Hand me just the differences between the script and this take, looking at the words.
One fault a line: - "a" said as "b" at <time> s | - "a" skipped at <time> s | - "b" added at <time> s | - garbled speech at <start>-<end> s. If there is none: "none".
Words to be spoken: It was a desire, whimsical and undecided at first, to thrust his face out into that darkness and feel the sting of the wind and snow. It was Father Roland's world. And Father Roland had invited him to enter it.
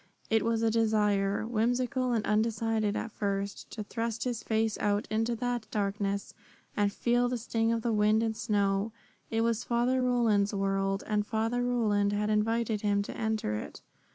none